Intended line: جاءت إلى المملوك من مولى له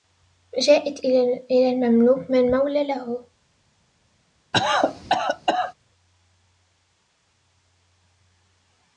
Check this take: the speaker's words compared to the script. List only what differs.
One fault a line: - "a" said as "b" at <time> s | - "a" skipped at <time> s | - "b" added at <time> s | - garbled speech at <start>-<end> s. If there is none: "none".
none